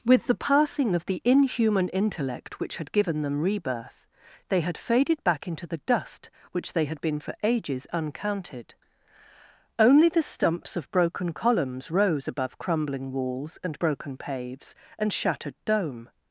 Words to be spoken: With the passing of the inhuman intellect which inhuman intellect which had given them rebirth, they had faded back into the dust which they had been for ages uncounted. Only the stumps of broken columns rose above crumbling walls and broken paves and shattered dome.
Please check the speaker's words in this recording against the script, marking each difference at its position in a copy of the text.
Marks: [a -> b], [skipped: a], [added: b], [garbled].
With the passing of the inhuman intellect which [skipped: inhuman intellect which] had given them rebirth, they had faded back into the dust which they had been for ages uncounted. Only the stumps of broken columns rose above crumbling walls and broken paves and shattered dome.